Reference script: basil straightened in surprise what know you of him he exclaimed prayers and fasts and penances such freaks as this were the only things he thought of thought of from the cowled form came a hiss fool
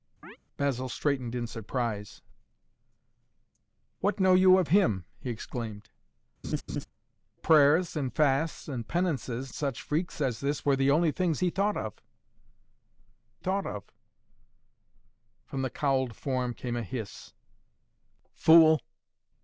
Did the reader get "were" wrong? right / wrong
right